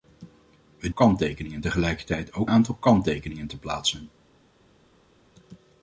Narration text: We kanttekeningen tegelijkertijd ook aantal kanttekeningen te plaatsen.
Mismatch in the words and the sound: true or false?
false